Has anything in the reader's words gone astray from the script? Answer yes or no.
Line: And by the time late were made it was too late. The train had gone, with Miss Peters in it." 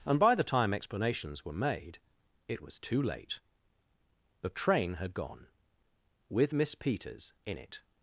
yes